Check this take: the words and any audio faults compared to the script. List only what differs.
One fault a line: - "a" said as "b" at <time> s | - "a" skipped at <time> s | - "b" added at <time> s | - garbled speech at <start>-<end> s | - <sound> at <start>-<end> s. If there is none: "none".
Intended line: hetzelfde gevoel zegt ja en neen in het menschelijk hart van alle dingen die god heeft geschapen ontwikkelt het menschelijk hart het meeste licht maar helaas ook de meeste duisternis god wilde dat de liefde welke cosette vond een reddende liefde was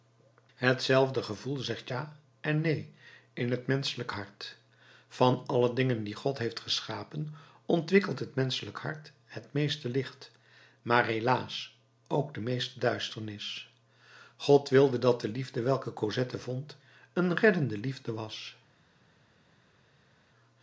none